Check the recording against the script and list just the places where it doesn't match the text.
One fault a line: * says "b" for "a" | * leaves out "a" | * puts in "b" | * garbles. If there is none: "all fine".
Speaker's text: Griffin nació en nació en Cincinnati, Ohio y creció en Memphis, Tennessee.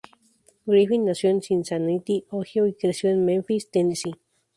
* leaves out "nació en"